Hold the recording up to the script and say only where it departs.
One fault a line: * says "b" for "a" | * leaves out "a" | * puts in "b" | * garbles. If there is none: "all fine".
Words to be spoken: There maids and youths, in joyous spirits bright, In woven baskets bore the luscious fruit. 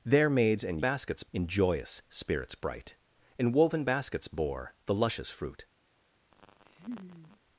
* says "baskets" for "youths"